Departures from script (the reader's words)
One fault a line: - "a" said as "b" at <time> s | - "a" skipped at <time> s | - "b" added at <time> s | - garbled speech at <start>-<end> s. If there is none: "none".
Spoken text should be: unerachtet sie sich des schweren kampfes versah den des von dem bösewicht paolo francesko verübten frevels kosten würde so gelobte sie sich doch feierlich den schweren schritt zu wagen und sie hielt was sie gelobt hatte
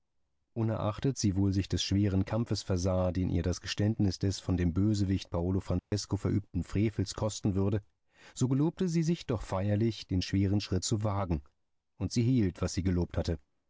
- "wohl" added at 1.4 s
- "ihr das geständnis" added at 3.3 s